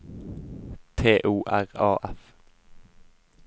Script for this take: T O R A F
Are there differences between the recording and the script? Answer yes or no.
no